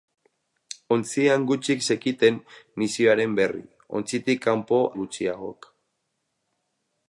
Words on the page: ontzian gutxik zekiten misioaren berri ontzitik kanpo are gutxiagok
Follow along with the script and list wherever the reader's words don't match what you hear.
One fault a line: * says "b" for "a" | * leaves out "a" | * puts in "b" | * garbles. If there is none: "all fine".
* leaves out "are"